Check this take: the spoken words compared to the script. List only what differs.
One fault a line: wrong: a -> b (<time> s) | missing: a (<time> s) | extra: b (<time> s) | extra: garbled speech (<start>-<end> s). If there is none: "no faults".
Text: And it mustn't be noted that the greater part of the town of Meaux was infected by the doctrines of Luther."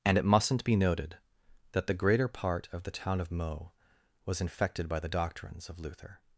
no faults